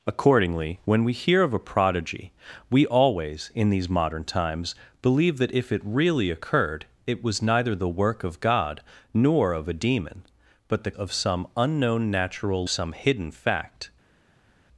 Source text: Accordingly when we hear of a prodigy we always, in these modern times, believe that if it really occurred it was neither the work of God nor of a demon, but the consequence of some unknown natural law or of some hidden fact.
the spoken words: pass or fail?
fail